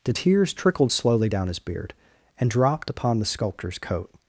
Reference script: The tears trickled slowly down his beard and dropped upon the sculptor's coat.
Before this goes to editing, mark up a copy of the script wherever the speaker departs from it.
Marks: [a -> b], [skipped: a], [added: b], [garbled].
The tears trickled slowly down his beard and dropped upon the sculptor's coat.